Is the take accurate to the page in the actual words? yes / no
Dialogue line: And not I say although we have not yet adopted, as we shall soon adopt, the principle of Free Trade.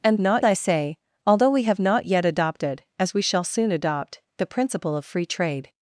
yes